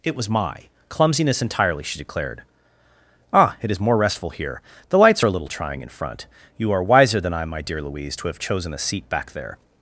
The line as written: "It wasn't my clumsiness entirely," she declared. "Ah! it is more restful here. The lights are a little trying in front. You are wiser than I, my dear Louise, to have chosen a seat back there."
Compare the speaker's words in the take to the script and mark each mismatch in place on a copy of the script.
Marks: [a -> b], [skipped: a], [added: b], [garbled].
"It [wasn't -> was] my clumsiness entirely," she declared. "Ah! it is more restful here. The lights are a little trying in front. You are wiser than I, my dear Louise, to have chosen a seat back there."